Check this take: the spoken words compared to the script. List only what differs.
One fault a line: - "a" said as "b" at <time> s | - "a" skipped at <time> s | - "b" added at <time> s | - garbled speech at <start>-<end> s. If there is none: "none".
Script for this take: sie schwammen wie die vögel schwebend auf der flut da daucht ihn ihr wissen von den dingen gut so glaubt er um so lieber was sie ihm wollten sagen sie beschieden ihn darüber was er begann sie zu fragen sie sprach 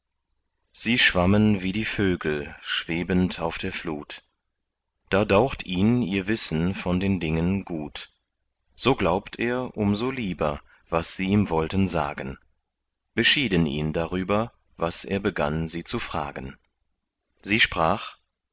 - "sie" skipped at 12.4 s